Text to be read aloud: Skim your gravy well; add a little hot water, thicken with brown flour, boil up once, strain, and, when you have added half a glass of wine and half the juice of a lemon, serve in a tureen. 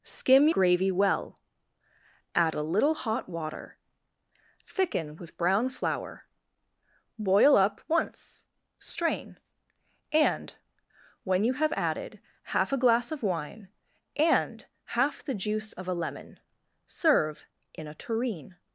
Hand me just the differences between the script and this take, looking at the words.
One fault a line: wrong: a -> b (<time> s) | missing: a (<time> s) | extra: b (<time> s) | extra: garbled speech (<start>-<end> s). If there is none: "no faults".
missing: your (0.5 s)